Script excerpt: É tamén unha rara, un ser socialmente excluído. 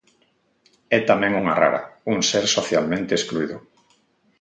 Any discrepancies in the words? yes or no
no